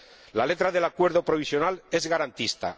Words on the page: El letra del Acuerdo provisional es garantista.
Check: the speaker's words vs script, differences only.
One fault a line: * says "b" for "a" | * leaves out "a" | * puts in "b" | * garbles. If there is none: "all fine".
* says "La" for "El"